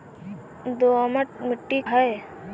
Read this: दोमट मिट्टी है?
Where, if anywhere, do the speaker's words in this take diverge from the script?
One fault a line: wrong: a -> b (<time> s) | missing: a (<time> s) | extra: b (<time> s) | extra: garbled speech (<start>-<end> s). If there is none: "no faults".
no faults